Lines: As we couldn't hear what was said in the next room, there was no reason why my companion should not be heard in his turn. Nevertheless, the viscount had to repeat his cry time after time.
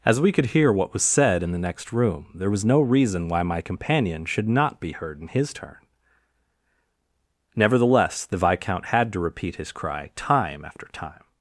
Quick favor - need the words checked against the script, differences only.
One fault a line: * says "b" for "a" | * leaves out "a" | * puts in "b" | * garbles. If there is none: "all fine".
* says "could" for "couldn't"